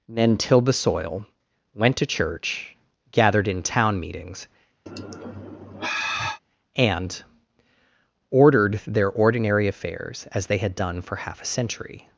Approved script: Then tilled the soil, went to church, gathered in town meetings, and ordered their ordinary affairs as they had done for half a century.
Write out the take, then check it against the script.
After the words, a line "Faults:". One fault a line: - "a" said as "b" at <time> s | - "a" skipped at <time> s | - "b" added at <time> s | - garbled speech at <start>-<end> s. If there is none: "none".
Then tilled the soil, went to church, gathered in town meetings, and ordered their ordinary affairs as they had done for half a century.
Faults:
none